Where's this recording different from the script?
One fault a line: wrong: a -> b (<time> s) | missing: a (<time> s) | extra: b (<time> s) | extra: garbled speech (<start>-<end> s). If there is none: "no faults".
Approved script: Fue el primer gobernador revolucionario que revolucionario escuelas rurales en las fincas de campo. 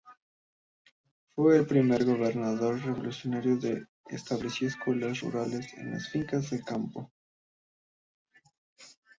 wrong: revolucionario -> estableció (4.1 s)